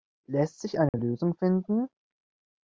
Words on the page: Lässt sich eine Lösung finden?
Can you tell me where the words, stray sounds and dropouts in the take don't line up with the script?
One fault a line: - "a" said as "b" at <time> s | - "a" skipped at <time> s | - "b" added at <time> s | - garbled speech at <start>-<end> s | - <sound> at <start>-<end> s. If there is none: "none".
- dropout at 0.9-0.9 s